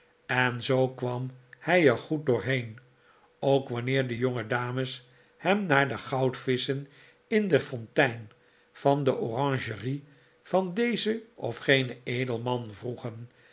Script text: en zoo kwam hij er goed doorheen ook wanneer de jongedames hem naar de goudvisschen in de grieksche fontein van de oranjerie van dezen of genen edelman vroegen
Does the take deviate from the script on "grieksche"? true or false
true